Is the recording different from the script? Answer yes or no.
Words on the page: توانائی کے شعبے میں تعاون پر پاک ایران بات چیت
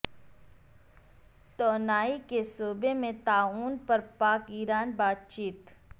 no